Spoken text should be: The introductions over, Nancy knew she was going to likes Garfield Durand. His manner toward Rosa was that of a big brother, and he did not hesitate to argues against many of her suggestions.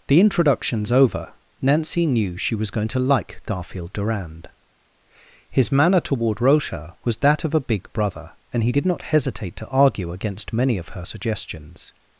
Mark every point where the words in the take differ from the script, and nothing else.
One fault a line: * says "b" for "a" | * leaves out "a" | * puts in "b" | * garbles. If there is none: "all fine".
* says "like" for "likes"
* says "argue" for "argues"